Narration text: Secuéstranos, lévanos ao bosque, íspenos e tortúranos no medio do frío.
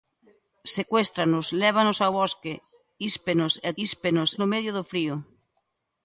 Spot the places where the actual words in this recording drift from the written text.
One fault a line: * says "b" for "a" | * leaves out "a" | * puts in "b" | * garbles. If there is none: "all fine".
* says "íspenos" for "tortúranos"